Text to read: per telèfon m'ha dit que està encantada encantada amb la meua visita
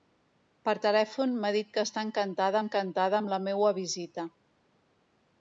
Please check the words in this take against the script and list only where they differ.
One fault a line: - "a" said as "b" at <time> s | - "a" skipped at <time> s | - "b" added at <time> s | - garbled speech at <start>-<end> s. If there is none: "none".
none